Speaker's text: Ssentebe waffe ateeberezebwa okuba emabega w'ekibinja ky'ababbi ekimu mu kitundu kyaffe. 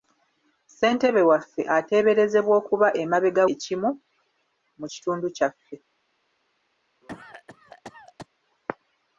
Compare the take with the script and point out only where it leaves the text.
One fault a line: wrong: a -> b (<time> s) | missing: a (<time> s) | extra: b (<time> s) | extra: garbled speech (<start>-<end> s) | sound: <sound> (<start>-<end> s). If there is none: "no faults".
missing: w'ekibinja ky'ababbi (3.4 s)
sound: cough (7.0-8.3 s)